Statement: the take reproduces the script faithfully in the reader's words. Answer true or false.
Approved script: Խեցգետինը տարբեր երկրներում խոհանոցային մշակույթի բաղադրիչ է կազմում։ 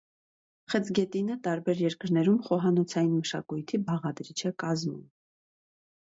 true